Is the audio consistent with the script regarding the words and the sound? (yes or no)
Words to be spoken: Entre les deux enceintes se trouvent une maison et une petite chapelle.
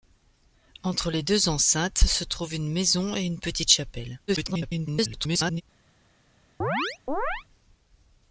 no